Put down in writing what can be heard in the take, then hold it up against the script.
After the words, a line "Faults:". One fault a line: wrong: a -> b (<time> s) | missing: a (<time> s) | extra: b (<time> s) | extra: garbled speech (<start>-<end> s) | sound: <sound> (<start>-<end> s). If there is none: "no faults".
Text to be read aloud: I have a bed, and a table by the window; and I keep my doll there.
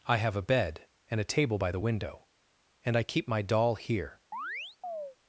I have a bed, and a table by the window; and I keep my doll here.
Faults:
wrong: there -> here (3.8 s)
sound: chirp (4.3-5.2 s)